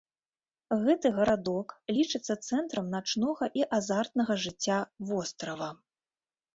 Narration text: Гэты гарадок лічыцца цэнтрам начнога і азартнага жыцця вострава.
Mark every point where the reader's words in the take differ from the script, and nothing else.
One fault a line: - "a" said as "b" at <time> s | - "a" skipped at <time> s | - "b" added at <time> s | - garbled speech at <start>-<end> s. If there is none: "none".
none